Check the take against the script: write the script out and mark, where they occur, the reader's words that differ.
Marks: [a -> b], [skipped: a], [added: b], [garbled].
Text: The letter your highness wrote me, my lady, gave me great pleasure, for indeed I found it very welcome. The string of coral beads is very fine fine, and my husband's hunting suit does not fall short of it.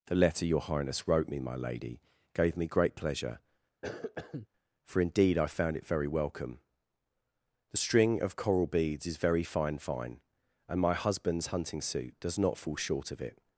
The letter your highness wrote me, my lady, gave me great pleasure, for indeed I found it very welcome. The string of coral beads is very fine fine, and my husband's hunting suit does not fall short of it.